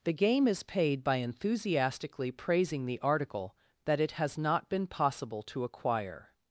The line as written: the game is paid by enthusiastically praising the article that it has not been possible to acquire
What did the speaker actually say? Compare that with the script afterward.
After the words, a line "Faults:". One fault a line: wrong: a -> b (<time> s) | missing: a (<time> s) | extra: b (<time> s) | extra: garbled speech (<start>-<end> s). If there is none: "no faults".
the game is paid by enthusiastically praising the article that it has not been possible to acquire
Faults:
no faults